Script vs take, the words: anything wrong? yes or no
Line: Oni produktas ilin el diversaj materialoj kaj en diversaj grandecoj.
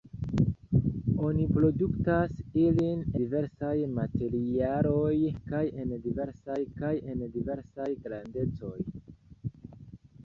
yes